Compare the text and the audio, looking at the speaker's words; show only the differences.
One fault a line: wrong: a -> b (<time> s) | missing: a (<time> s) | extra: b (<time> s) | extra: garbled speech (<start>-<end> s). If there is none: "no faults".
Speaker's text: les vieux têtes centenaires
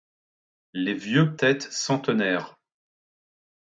no faults